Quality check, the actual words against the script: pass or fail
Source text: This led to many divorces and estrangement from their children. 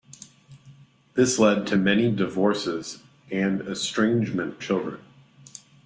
fail